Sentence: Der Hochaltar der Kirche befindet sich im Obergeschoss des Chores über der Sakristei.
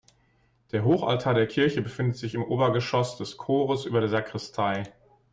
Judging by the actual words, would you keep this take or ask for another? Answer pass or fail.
pass